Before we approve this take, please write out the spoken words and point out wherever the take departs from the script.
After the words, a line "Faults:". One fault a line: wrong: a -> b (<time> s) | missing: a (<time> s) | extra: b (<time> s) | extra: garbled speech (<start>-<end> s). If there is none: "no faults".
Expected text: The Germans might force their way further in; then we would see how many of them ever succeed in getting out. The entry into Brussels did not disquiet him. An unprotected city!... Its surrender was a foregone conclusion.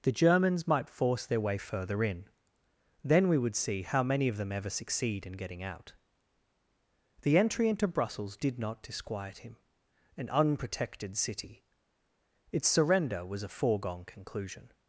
The Germans might force their way further in; then we would see how many of them ever succeed in getting out. The entry into Brussels did not disquiet him. An unprotected city!... Its surrender was a foregone conclusion.
Faults:
no faults